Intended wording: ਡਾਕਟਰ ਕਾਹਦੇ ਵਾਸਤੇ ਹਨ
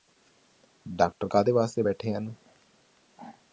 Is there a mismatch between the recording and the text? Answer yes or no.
yes